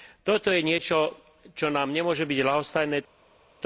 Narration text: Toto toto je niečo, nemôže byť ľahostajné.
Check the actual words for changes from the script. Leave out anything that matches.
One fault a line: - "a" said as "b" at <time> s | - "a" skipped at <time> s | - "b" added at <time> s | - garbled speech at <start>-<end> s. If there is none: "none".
- "toto" skipped at 0.5 s
- "čo nám" added at 1.5 s